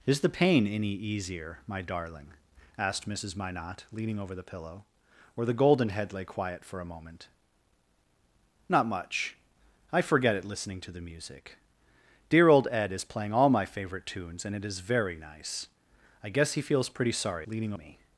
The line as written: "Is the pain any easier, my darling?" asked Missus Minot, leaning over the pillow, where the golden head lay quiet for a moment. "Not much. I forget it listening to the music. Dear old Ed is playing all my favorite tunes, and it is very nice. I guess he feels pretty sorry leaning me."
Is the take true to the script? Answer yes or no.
yes